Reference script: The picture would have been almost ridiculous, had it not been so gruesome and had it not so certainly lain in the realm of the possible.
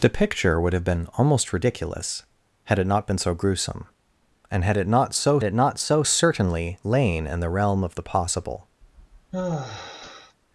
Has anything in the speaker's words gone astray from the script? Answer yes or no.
yes